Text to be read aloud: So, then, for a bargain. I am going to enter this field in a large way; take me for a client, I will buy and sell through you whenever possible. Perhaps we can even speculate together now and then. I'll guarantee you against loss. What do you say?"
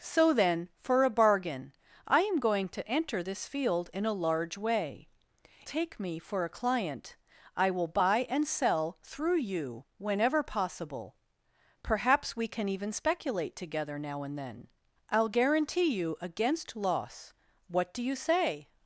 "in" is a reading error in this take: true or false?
false